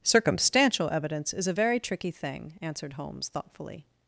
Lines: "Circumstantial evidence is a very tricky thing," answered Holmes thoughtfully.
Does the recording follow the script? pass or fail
pass